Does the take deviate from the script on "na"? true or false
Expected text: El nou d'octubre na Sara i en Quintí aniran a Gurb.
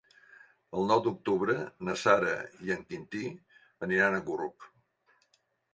false